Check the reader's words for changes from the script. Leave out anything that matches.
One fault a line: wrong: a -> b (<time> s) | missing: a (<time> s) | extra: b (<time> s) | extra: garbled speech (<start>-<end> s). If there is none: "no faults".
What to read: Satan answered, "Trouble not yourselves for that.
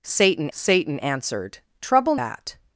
extra: satan (0.5 s)
missing: not yourselves for (2.2 s)